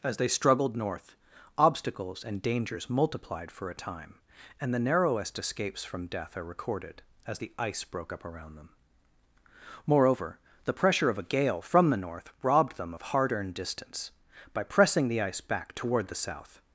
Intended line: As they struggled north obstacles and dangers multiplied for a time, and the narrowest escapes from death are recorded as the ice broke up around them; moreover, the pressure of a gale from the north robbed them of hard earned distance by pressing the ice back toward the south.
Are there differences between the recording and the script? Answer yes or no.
no